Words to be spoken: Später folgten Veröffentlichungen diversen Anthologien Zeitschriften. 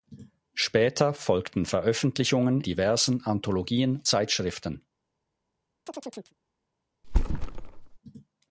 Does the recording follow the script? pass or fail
pass